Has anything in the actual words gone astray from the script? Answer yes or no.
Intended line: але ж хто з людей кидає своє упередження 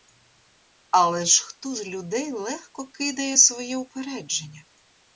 yes